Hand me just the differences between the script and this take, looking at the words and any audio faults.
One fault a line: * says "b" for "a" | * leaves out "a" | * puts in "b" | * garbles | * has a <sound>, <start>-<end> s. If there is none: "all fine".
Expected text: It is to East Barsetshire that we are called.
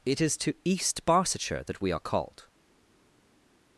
all fine